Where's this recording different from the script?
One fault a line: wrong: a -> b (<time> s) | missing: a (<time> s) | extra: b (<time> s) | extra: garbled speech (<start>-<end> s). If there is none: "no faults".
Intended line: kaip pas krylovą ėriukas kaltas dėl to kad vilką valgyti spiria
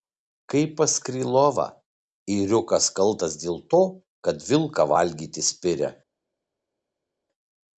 no faults